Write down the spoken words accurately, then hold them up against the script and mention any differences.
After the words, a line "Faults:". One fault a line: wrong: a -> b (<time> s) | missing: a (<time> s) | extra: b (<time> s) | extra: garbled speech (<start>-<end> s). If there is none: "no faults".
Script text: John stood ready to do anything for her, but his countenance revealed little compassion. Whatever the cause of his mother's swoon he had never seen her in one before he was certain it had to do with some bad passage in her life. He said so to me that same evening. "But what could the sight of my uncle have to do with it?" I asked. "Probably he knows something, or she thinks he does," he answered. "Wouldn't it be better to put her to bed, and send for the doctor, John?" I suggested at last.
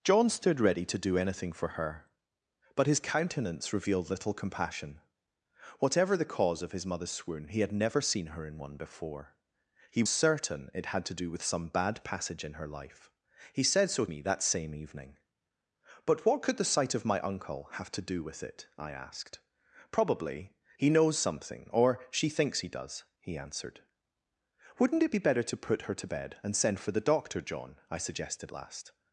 John stood ready to do anything for her, but his countenance revealed little compassion. Whatever the cause of his mother's swoon he had never seen her in one before he certain it had to do with some bad passage in her life. He said so me that same evening. "But what could the sight of my uncle have to do with it?" I asked. "Probably he knows something, or she thinks he does," he answered. "Wouldn't it be better to put her to bed, and send for the doctor, John?" I suggested last.
Faults:
missing: was (10.0 s)
missing: to (14.1 s)
missing: at (28.5 s)